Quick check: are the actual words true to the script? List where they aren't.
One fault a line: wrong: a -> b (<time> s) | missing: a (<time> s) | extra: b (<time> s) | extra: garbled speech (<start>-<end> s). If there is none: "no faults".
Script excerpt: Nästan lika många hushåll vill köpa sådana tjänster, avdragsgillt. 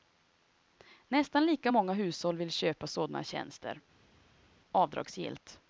no faults